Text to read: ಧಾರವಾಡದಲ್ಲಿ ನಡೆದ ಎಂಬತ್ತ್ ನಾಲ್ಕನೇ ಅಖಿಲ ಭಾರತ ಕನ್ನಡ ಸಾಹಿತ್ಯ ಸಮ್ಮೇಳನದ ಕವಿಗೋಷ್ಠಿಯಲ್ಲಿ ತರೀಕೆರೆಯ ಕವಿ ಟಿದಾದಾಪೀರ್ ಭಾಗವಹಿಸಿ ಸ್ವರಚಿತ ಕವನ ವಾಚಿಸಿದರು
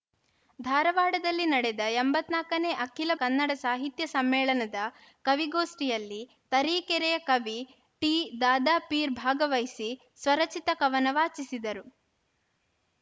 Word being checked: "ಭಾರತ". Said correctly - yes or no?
no